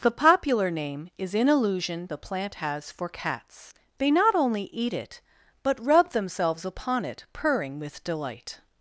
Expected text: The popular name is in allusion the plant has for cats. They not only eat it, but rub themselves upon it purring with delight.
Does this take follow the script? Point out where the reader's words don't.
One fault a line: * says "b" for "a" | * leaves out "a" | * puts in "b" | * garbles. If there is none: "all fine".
all fine